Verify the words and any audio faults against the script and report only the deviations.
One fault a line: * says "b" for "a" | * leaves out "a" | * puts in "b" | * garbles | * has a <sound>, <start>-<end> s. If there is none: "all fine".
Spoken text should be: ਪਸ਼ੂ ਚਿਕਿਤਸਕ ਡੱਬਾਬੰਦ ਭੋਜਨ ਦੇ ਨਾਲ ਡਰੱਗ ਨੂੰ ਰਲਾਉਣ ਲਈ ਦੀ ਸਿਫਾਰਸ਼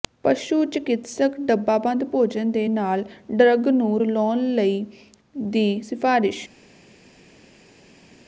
all fine